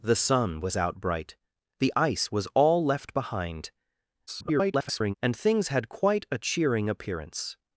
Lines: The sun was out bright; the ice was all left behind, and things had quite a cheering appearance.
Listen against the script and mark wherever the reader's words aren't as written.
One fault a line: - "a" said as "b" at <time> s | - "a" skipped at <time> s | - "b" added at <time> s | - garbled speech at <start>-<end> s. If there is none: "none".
- garbled speech at 4.3-5.1 s